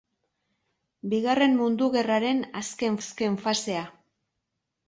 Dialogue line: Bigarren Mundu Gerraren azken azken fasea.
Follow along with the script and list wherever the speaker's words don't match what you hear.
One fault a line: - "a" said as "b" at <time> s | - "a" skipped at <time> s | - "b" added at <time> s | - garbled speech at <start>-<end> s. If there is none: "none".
none